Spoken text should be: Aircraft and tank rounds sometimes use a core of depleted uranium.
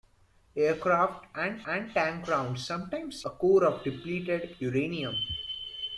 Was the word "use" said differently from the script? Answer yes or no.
yes